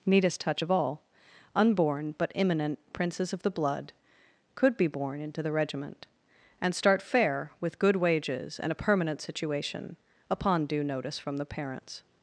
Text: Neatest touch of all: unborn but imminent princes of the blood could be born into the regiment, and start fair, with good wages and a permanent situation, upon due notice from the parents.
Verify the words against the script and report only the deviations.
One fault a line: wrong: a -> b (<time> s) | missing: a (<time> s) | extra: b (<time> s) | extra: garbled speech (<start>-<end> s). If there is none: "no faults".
no faults